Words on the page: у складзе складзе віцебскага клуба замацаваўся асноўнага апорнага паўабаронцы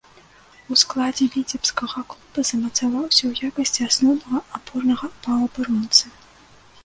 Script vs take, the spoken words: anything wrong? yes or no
yes